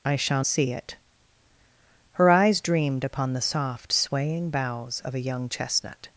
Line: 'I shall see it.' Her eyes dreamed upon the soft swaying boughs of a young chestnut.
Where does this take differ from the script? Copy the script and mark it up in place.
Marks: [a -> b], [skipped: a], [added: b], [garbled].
'I shall see it.' Her eyes dreamed upon the soft swaying boughs of a young chestnut.